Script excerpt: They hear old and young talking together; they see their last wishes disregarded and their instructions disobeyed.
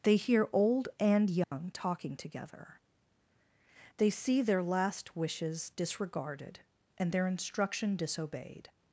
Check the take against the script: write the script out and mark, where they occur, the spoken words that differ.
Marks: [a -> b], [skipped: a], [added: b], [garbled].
They hear old and young talking together; they see their last wishes disregarded and their [instructions -> instruction] disobeyed.